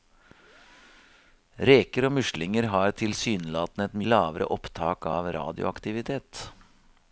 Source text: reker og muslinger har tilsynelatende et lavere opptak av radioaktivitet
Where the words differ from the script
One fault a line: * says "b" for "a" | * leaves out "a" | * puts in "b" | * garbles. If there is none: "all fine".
all fine